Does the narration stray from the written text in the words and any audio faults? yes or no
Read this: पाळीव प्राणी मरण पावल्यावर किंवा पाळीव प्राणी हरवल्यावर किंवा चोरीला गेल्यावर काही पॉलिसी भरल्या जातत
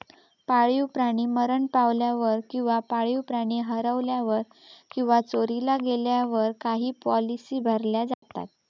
yes